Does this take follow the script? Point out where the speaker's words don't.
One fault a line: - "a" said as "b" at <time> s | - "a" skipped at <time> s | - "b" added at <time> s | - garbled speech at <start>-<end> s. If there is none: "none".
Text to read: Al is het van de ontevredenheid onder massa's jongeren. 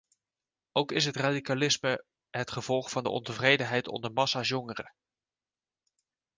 - "Al" said as "Ook" at 0.7 s
- "radicalisme het gevolg" added at 1.1 s